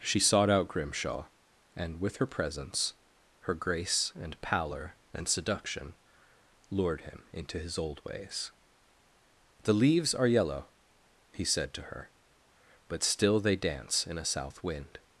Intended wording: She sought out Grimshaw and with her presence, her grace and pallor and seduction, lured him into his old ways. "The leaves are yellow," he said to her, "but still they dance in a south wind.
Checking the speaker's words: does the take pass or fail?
pass